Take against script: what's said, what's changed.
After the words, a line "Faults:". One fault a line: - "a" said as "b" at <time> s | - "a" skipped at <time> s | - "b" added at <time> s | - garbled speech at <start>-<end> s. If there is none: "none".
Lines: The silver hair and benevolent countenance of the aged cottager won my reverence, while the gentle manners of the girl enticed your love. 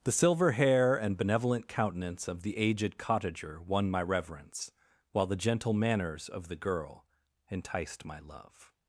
The silver hair and benevolent countenance of the aged cottager won my reverence, while the gentle manners of the girl enticed my love.
Faults:
- "your" said as "my" at 8.0 s